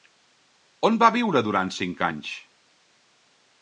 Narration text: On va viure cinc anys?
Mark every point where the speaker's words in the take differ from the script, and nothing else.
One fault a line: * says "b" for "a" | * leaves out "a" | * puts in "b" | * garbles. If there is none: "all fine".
* puts in "durant"